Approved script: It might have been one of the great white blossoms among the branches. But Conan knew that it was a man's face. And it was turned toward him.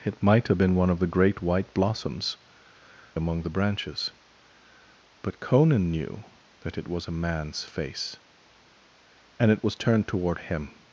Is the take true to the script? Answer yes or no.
yes